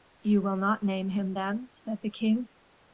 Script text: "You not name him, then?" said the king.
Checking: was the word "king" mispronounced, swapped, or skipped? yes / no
no